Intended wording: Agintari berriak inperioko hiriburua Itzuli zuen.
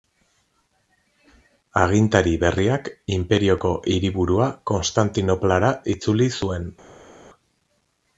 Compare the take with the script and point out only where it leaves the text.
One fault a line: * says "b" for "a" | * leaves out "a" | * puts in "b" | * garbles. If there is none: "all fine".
* puts in "Konstantinoplara"